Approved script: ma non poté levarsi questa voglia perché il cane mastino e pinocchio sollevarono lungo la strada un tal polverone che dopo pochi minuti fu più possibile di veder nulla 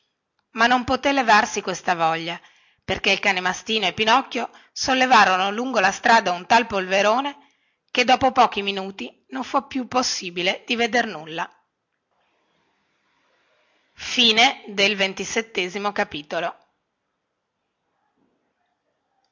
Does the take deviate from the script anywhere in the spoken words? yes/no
yes